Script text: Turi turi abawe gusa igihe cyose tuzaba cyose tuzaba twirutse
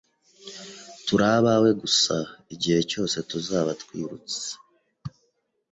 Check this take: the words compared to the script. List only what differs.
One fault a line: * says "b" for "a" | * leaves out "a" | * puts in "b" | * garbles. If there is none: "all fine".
* leaves out "turi"
* leaves out "cyose tuzaba"